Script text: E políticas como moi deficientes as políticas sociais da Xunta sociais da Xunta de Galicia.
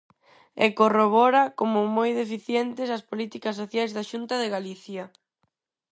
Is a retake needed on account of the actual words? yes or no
yes